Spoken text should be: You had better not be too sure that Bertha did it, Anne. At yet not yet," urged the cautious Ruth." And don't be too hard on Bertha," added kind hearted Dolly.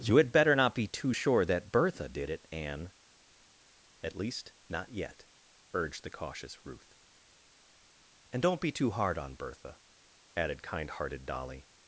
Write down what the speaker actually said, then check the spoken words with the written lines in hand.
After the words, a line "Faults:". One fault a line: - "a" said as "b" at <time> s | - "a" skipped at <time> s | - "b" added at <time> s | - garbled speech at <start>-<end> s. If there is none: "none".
You had better not be too sure that Bertha did it, Anne. At least not yet," urged the cautious Ruth." And don't be too hard on Bertha," added kind hearted Dolly.
Faults:
- "yet" said as "least" at 4.1 s